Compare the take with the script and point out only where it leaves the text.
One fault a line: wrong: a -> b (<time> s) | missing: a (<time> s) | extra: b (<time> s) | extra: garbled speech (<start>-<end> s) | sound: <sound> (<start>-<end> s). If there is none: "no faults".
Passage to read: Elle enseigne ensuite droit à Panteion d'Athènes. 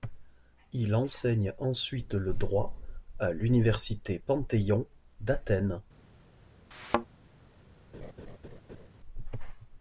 wrong: Elle -> Il (0.7 s)
extra: le (2.1 s)
extra: l'université (3.3 s)
sound: thud (6.7-7.1 s)
sound: laugh (7.9-8.9 s)